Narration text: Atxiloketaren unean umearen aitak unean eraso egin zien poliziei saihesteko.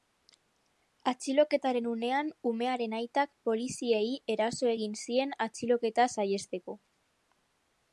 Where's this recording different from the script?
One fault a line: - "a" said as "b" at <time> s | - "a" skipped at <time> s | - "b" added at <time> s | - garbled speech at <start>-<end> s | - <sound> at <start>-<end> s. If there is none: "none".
- "unean" said as "poliziei" at 3.5 s
- "poliziei" said as "atxiloketa" at 5.5 s